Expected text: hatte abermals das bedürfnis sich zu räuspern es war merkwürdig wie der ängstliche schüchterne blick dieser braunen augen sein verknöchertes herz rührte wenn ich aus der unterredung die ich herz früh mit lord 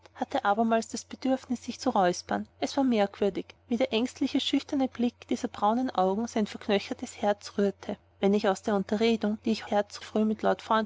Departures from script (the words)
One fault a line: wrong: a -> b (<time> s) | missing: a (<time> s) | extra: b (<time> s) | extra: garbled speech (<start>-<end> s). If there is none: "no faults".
no faults